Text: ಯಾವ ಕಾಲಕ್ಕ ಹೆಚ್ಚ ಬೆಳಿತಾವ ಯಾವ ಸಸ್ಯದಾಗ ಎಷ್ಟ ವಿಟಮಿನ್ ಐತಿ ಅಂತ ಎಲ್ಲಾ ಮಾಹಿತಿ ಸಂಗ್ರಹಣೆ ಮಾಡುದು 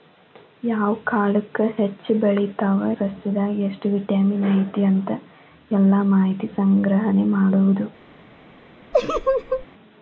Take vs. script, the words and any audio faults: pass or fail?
fail